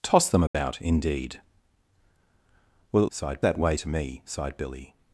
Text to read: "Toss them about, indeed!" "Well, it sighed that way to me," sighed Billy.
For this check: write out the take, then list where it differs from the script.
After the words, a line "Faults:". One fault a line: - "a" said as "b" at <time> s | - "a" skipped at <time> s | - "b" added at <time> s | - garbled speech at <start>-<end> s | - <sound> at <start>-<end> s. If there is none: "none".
"Toss them about, indeed!" "Well, it sighed that way to me," sighed Billy.
Faults:
- dropout at 0.5-0.5 s